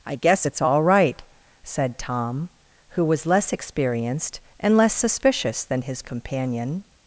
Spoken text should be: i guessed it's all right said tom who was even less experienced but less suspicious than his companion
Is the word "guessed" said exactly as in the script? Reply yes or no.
no